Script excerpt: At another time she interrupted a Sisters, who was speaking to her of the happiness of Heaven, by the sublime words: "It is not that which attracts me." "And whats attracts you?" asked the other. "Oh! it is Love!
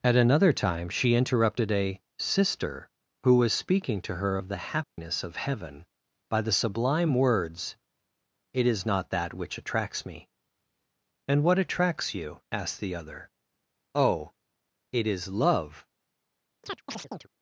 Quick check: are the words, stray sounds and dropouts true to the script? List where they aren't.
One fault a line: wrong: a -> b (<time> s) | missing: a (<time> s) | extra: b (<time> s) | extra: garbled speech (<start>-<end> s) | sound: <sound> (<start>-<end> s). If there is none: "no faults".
wrong: Sisters -> Sister (2.2 s)
sound: dropout (4.8-5.0 s)
wrong: whats -> what (11.4 s)
sound: chirp (16.6-17.3 s)